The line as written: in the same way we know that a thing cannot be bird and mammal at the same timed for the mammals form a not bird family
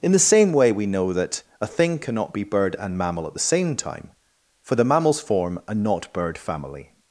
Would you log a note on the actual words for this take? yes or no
yes